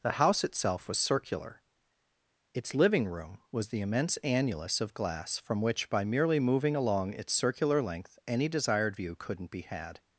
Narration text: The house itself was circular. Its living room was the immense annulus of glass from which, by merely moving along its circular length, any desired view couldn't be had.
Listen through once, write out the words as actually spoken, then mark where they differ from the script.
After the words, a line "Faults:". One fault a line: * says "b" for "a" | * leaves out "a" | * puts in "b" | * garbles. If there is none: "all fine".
The house itself was circular. Its living room was the immense annulus of glass from which, by merely moving along its circular length, any desired view couldn't be had.
Faults:
all fine